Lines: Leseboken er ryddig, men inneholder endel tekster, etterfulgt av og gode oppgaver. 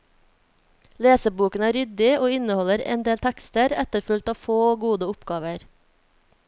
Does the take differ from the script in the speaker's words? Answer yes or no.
yes